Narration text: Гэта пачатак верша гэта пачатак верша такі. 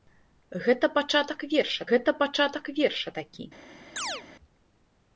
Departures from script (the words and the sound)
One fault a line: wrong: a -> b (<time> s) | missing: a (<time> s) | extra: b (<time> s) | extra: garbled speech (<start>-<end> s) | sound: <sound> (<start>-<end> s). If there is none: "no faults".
sound: chirp (4.0-4.2 s)